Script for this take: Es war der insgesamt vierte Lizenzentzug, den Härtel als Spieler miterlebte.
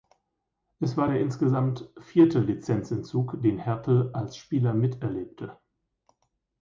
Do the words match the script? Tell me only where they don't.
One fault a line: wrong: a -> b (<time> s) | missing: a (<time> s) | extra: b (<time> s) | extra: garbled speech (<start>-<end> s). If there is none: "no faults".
no faults